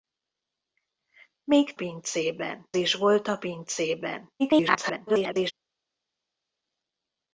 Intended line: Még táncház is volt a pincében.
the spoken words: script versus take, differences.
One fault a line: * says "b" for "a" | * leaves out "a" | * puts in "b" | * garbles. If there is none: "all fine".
* says "pincében" for "táncház"
* garbles